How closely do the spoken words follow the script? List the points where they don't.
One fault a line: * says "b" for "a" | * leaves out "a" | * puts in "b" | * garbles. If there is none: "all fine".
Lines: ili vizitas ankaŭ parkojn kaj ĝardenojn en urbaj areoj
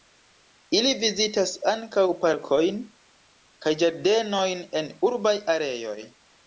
all fine